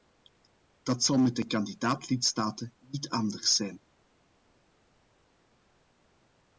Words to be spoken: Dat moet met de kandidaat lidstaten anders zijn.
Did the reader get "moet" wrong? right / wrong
wrong